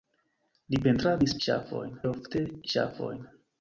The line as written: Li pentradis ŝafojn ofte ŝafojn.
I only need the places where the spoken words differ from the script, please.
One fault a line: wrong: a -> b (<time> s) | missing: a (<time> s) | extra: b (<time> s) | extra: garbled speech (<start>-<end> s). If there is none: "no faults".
no faults